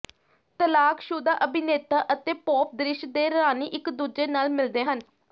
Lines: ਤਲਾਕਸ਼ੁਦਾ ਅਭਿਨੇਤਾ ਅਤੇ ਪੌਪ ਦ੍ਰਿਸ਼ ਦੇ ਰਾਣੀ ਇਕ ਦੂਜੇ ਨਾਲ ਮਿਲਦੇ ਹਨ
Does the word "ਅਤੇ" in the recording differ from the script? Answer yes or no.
no